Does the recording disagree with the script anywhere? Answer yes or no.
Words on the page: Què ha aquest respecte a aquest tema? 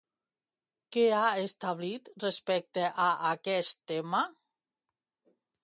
yes